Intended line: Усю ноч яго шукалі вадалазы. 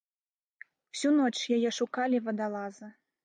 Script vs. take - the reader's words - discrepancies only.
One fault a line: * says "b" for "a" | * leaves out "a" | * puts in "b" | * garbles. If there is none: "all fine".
* says "яе" for "яго"